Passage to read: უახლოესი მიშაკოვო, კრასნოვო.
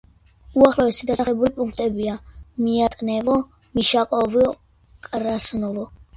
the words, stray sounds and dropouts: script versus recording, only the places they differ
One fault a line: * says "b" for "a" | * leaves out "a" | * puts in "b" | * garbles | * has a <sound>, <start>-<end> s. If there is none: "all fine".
* puts in "დასახლებული პუნქტებია მიატნევო"